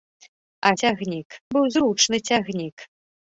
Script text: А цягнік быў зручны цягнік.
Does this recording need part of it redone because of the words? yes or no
no